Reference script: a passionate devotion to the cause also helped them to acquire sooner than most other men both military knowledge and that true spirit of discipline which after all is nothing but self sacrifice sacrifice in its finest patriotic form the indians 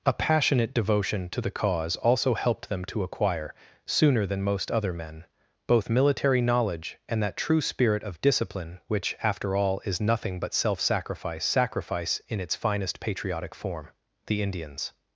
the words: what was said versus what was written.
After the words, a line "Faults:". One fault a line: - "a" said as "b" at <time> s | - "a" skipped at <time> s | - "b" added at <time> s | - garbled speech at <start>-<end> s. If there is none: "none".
a passionate devotion to the cause also helped them to acquire sooner than most other men both military knowledge and that true spirit of discipline which after all is nothing but self sacrifice sacrifice in its finest patriotic form the indians
Faults:
none